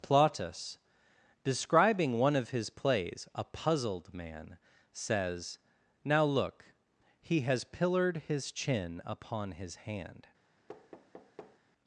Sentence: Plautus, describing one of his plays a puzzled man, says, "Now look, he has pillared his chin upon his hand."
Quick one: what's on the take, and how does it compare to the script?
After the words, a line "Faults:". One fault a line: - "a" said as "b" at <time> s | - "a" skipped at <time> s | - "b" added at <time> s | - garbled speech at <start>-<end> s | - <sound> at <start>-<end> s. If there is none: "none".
Plautus, describing one of his plays a puzzled man, says, "Now look, he has pillared his chin upon his hand."
Faults:
- thud at 10.7-11.6 s